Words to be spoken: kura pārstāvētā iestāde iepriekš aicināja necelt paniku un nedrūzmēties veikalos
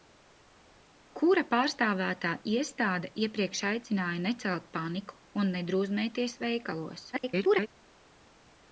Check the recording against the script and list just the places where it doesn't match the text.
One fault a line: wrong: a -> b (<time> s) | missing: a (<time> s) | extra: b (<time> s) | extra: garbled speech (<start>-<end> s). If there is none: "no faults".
extra: garbled speech (7.1-7.7 s)